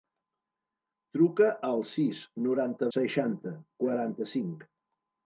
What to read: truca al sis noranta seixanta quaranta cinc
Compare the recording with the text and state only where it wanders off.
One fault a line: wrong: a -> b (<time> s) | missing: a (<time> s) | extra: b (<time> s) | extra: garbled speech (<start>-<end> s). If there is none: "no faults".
no faults